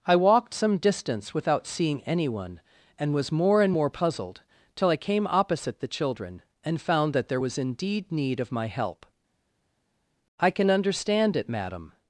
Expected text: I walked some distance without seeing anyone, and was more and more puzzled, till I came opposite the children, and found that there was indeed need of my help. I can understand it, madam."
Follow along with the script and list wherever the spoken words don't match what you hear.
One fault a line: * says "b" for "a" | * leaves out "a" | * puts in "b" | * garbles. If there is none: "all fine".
all fine